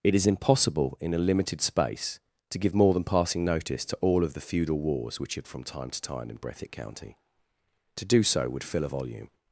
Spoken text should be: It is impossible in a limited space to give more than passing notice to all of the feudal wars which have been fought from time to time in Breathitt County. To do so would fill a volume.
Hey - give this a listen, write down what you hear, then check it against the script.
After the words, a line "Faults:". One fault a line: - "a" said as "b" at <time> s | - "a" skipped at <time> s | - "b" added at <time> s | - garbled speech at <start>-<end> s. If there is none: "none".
It is impossible in a limited space to give more than passing notice to all of the feudal wars which have from time to time in Breathitt County. To do so would fill a volume.
Faults:
- "been fought" skipped at 5.5 s